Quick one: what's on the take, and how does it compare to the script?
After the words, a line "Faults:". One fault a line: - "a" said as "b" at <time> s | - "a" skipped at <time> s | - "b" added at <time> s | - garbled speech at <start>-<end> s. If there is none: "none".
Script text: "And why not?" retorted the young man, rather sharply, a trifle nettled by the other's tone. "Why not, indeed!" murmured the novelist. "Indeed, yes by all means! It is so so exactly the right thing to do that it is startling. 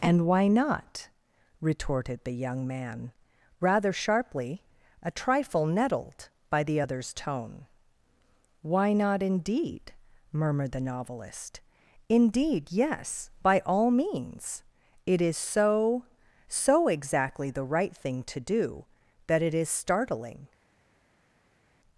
"And why not?" retorted the young man, rather sharply, a trifle nettled by the other's tone. "Why not, indeed!" murmured the novelist. "Indeed, yes by all means! It is so so exactly the right thing to do that it is startling.
Faults:
none